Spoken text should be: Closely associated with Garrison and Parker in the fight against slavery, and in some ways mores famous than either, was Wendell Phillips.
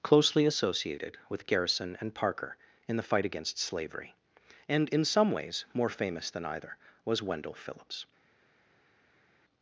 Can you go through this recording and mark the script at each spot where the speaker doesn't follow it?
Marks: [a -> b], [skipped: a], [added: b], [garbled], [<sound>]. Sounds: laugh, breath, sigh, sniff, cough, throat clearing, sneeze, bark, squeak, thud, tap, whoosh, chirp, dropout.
Closely associated with Garrison and Parker in the fight against slavery, and in some ways [mores -> more] famous than either, was Wendell Phillips.